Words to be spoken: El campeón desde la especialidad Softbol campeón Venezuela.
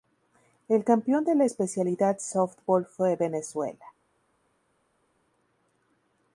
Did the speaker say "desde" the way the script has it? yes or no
no